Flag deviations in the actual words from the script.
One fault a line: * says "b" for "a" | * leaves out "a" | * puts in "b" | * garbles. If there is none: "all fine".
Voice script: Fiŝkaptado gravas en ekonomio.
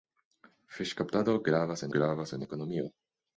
* puts in "gravas"